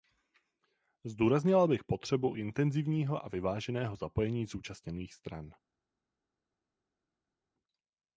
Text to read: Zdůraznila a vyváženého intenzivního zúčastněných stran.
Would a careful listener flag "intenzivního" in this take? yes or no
yes